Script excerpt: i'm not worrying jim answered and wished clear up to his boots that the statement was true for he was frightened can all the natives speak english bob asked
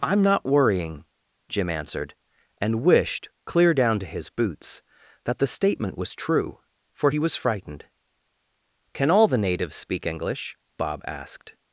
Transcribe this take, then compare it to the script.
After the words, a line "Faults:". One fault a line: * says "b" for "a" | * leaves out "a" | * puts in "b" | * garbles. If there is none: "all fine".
i'm not worrying jim answered and wished clear down to his boots that the statement was true for he was frightened can all the natives speak english bob asked
Faults:
* says "down" for "up"